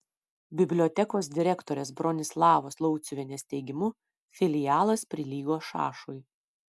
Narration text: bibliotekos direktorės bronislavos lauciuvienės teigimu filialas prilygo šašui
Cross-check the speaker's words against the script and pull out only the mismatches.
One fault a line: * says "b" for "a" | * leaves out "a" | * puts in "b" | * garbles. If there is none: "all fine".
all fine